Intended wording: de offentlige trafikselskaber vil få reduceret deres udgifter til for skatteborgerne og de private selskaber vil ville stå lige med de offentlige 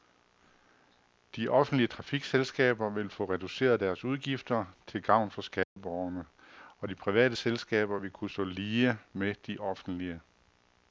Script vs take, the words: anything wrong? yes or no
yes